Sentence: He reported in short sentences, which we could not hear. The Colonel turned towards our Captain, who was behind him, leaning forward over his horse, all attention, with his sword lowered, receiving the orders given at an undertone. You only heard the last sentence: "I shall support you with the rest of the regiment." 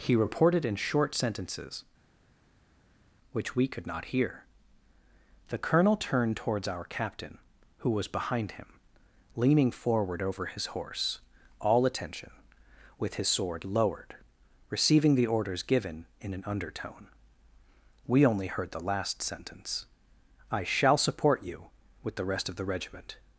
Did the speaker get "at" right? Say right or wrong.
wrong